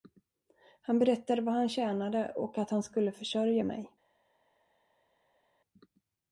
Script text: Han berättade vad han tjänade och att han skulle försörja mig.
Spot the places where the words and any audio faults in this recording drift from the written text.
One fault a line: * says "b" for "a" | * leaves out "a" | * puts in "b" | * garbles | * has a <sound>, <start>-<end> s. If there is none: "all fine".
all fine